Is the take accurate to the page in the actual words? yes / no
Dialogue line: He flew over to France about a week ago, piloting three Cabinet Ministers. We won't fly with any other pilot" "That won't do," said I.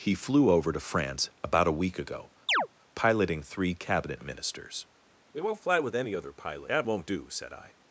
yes